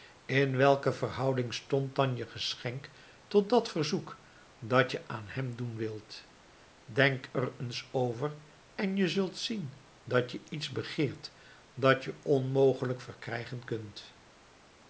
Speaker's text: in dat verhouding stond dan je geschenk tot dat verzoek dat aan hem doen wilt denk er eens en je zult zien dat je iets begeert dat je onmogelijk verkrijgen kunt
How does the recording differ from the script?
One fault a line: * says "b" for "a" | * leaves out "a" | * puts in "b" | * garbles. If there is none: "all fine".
* says "welke" for "dat"
* puts in "je"
* puts in "over"